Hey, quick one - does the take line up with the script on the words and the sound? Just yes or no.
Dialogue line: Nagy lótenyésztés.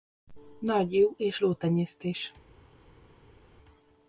no